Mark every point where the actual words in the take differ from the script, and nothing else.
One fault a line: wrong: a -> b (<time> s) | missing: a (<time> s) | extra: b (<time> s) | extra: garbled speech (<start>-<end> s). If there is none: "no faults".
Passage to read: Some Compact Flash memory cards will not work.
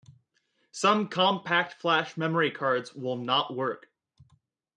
no faults